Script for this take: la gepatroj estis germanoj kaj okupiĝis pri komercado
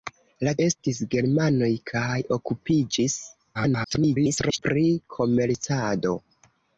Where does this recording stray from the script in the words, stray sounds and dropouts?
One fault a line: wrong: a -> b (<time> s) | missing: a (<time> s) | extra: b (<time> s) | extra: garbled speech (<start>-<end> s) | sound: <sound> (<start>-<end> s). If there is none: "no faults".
missing: gepatroj (0.5 s)
extra: garbled speech (3.5-4.6 s)